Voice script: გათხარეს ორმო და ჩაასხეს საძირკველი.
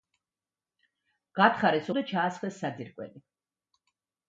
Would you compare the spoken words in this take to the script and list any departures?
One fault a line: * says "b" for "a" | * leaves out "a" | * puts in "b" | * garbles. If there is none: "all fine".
* leaves out "ორმო"